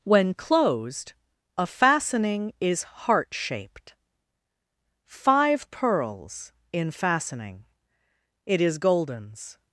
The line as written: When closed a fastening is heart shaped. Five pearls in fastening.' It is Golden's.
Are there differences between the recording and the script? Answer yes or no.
no